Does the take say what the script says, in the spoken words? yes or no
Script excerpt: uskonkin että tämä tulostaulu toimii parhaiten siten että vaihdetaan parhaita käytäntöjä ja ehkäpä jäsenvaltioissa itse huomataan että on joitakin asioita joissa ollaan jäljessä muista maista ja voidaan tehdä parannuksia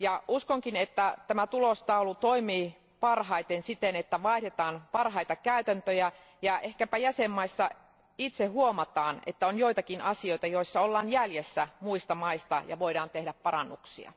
yes